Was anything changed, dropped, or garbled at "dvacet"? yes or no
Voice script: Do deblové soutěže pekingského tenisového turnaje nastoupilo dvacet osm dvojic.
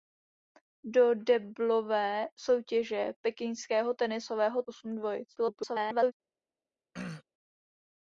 yes